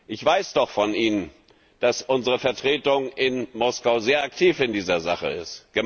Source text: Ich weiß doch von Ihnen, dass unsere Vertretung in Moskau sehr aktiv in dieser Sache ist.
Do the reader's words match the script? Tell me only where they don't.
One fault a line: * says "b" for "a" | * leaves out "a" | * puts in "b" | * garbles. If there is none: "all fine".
all fine